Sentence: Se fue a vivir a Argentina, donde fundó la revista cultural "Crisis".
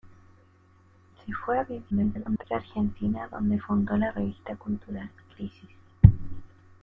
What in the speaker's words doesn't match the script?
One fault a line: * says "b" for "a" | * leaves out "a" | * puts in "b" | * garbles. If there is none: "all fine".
* garbles